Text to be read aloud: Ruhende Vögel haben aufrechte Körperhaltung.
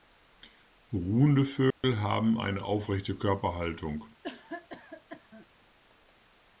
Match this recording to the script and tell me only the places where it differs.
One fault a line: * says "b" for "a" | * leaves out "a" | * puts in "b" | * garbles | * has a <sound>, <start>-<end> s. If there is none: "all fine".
* has a dropout, 1.7-1.8 s
* puts in "eine"
* has a cough, 4.2-5.5 s